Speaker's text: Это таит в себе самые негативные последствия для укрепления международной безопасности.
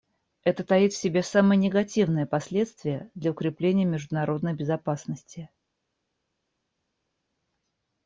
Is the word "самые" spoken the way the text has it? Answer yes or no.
yes